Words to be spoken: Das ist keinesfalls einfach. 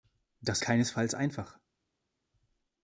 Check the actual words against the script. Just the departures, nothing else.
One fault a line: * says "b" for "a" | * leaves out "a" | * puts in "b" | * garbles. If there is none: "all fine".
* leaves out "ist"